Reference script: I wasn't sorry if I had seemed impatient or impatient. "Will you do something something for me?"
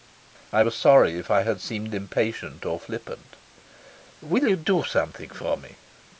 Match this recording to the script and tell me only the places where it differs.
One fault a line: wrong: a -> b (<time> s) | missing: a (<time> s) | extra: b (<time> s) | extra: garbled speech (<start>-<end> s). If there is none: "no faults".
wrong: wasn't -> was (0.6 s)
wrong: impatient -> flippant (2.8 s)
missing: something (5.3 s)